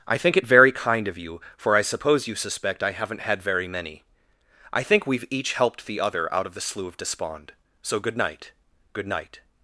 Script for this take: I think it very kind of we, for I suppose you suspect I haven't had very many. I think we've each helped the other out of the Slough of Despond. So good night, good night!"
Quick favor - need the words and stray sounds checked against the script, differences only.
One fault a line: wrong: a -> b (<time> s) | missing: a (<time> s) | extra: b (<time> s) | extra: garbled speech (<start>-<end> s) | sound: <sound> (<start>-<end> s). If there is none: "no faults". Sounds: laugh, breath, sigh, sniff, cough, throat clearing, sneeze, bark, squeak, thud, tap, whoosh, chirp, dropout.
wrong: we -> you (1.2 s)